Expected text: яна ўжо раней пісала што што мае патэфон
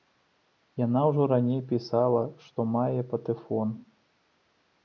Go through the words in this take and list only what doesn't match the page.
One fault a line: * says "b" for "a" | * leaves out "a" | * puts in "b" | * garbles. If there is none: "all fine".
* leaves out "што"